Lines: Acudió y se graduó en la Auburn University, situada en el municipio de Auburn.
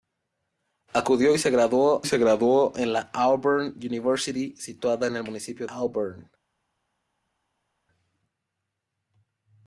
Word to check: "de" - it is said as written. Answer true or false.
false